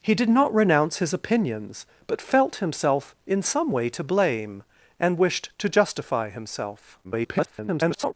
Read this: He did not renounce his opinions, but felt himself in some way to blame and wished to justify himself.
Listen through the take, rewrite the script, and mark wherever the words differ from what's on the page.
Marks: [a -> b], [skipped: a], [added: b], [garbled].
He did not renounce his opinions, but felt himself in some way to blame and wished to justify himself. [garbled]